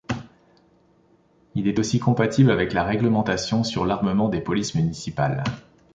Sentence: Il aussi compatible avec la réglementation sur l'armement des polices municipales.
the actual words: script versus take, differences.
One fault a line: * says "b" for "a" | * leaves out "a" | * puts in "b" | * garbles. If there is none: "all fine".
* puts in "est"